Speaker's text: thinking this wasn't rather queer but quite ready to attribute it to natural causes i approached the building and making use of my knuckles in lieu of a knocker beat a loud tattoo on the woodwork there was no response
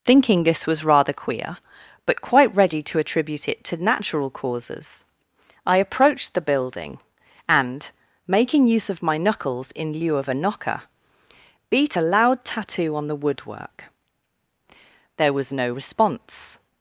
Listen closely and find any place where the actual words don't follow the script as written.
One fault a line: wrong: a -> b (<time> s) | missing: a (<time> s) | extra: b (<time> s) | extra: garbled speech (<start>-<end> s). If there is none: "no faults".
wrong: wasn't -> was (0.7 s)